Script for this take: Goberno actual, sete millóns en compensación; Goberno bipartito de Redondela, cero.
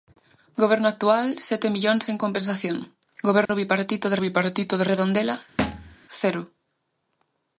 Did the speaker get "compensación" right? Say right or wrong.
right